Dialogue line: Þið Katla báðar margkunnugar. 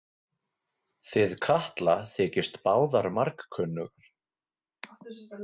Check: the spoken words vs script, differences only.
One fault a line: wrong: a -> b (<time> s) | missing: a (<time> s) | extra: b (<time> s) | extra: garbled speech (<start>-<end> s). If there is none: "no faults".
extra: þykist (2.1 s)